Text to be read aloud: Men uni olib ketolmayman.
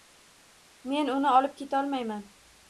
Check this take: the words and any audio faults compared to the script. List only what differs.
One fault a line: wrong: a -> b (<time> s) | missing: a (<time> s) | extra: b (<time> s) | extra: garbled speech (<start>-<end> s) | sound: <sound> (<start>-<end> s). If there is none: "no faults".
no faults